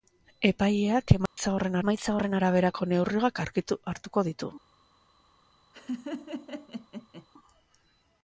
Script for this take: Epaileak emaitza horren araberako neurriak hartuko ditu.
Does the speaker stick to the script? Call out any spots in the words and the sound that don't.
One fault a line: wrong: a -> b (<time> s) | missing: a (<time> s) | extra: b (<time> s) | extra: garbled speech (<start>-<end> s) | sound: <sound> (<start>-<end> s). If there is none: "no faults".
sound: dropout (1.3-1.4 s)
extra: emaitza horren (1.8 s)
sound: laugh (5.7-7.3 s)